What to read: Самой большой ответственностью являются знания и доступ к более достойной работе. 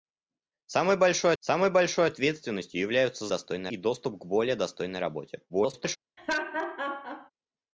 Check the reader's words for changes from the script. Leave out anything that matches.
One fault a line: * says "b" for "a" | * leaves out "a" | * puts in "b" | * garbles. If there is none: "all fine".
* puts in "самой большой"
* says "достойной" for "знания"
* garbles